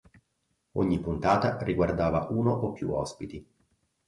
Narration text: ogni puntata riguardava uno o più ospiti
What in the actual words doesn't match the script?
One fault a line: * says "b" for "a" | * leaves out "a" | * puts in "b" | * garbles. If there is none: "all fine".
all fine